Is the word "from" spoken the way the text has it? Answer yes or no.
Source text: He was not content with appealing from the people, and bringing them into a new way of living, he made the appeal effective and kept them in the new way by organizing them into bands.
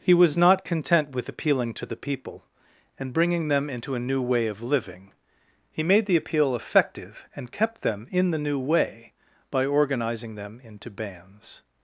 no